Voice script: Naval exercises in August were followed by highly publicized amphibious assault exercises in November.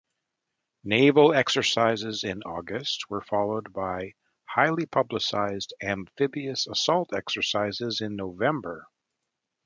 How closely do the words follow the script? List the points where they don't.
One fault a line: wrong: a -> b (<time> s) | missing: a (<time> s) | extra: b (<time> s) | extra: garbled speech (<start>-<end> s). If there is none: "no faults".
no faults